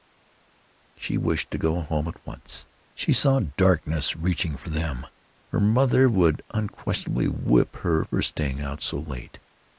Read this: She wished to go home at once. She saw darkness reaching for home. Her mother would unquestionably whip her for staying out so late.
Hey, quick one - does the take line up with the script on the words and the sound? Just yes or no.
no